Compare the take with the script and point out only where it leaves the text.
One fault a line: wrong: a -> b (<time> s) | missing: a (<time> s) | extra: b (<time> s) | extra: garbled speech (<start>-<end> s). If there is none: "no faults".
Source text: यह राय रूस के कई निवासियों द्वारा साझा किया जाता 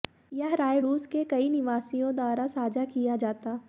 no faults